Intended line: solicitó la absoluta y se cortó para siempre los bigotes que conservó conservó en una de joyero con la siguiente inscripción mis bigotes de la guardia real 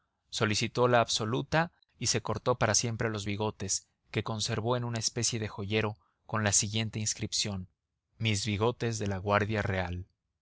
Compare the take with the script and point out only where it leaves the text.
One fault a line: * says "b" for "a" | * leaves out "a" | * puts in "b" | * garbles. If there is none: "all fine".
* leaves out "conservó"
* puts in "especie"